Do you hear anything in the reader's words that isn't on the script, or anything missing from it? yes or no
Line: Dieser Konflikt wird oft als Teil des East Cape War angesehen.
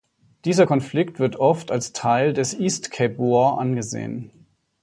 no